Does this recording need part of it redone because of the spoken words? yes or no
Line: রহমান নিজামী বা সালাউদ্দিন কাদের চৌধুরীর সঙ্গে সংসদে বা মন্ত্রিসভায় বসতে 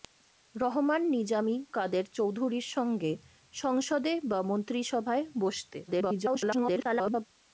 yes